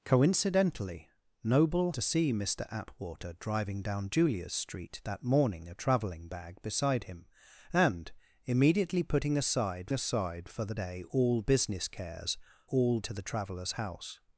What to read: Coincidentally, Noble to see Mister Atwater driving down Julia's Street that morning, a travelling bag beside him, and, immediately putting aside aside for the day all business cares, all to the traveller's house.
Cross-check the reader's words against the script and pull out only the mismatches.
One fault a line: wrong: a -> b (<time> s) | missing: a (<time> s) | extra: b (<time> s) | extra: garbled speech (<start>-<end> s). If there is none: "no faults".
no faults